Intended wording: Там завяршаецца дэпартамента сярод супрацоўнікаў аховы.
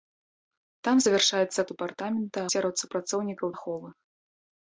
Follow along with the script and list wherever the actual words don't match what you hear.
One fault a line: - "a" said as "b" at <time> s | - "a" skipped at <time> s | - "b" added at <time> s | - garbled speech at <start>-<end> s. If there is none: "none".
none